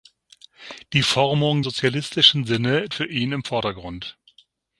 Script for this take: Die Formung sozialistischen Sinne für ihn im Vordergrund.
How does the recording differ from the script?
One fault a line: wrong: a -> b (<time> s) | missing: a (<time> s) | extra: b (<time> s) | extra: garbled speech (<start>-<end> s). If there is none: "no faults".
no faults